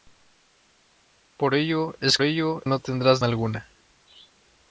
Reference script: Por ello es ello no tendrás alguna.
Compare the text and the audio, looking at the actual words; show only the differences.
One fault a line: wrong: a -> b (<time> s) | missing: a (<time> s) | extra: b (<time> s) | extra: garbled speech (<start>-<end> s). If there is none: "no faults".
no faults